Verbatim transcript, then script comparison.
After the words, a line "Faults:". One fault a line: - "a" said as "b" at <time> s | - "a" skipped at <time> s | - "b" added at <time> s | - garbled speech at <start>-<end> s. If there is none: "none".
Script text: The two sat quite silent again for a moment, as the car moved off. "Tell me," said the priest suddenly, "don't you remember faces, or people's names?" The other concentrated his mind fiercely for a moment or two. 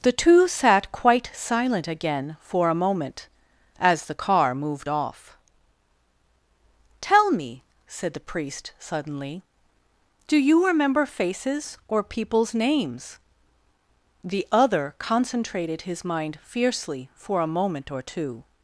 The two sat quite silent again for a moment, as the car moved off. "Tell me," said the priest suddenly, "do you remember faces, or people's names?" The other concentrated his mind fiercely for a moment or two.
Faults:
- "don't" said as "do" at 10.3 s